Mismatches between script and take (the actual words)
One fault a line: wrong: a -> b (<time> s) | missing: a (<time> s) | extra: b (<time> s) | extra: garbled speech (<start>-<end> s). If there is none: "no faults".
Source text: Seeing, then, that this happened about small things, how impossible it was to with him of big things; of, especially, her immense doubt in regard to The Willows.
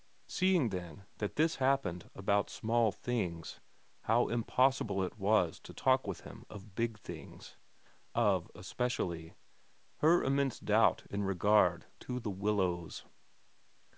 extra: talk (5.8 s)